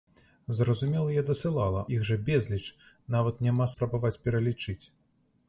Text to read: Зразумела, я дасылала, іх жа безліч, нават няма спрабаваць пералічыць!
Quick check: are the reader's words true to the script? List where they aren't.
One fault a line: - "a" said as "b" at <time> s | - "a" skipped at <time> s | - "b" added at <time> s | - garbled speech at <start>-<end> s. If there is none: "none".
none